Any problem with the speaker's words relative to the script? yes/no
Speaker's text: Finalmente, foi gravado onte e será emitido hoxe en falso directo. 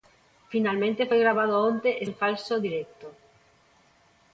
yes